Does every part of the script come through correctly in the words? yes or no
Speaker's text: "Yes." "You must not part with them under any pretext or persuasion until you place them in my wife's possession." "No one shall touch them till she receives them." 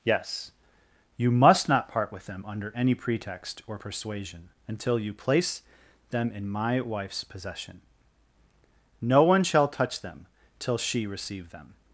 no